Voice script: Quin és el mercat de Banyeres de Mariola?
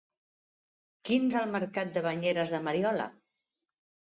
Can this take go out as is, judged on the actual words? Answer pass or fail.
pass